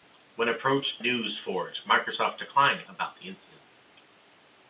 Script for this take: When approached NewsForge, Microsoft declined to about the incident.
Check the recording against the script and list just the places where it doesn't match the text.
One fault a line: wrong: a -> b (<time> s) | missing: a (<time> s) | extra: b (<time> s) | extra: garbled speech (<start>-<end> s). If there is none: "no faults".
no faults